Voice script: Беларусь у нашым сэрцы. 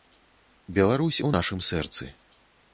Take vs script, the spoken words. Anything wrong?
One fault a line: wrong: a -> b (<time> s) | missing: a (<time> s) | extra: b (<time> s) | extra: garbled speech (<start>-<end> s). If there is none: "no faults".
no faults